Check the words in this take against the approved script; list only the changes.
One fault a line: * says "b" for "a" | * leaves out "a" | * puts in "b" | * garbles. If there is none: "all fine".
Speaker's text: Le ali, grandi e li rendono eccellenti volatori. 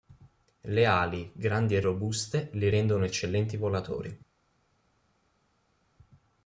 * puts in "robuste"